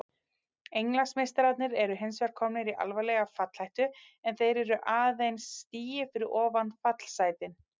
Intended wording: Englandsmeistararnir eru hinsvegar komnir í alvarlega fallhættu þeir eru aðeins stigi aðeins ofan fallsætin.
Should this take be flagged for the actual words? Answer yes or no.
yes